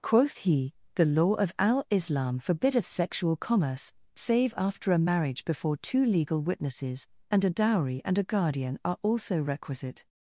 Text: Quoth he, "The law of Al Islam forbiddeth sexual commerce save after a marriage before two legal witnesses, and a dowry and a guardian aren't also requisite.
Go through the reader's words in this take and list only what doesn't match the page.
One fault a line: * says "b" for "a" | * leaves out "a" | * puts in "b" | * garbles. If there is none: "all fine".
* says "are" for "aren't"